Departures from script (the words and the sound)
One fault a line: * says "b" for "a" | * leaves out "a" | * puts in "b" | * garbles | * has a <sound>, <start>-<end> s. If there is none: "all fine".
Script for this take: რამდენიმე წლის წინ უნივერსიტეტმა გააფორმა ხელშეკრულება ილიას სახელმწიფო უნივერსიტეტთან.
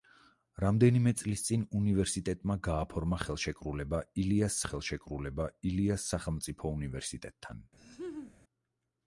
* puts in "ხელშეკრულება ილიას"
* has a laugh, 7.8-8.4 s